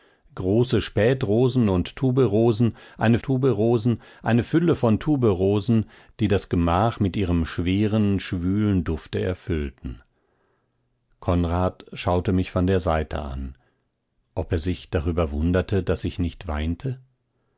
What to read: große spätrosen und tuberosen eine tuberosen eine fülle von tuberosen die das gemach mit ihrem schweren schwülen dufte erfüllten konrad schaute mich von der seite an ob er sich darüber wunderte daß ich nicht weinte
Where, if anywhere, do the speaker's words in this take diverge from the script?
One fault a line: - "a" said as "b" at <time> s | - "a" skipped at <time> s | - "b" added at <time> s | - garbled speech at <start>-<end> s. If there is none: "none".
none